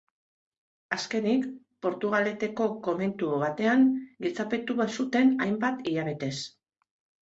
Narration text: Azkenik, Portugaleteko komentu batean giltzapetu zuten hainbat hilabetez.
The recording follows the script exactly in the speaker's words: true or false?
true